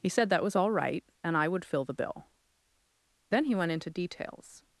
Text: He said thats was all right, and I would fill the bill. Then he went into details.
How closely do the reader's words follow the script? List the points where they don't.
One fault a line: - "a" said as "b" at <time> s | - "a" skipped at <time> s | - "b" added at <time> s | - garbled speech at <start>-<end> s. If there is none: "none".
- "thats" said as "that" at 0.3 s